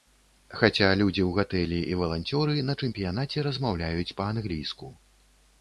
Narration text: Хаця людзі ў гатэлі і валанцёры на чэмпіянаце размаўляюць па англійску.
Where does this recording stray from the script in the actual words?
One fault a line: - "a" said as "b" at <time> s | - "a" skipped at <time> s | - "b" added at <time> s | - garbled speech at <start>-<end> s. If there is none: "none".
none